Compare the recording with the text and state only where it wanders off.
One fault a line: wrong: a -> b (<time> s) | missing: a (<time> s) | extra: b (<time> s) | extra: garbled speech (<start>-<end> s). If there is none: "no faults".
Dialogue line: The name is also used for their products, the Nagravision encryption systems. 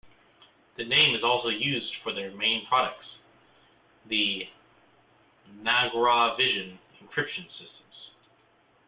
extra: main (2.3 s)